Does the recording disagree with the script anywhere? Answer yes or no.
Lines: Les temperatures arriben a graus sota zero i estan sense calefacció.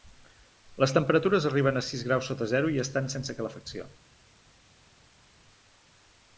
yes